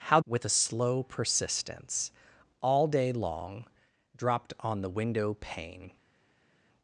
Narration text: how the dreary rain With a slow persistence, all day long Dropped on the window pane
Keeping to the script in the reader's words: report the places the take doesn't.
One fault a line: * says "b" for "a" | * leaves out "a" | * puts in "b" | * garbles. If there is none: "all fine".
* leaves out "the dreary rain"